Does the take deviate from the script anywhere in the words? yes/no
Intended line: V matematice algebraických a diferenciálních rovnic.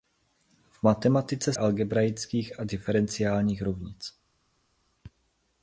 no